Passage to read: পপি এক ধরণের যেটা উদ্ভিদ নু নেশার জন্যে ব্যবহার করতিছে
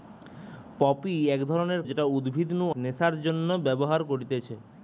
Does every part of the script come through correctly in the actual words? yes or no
yes